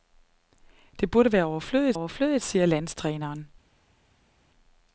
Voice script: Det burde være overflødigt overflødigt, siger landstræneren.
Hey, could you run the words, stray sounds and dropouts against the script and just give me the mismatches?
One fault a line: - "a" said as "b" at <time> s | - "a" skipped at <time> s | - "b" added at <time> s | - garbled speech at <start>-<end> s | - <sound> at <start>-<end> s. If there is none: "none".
none